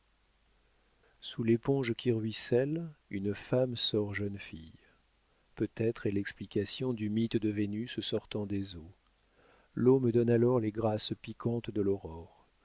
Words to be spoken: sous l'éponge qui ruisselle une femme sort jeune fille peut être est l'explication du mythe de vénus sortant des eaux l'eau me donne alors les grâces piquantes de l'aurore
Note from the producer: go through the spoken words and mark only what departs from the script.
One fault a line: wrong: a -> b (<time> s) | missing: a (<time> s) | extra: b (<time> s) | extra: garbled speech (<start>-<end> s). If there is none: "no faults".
no faults